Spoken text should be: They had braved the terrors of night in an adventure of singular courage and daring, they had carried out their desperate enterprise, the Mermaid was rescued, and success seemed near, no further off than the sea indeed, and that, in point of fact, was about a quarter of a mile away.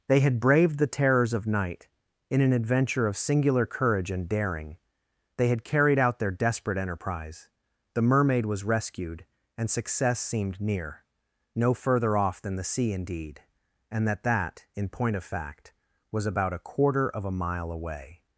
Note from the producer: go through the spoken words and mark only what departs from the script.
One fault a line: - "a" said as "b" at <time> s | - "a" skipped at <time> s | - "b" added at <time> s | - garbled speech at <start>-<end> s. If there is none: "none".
- "that" added at 14.2 s